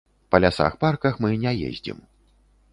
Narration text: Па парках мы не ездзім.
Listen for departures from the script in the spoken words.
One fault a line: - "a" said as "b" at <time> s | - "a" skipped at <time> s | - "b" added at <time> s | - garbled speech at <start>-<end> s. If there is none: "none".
- "лясах" added at 0.5 s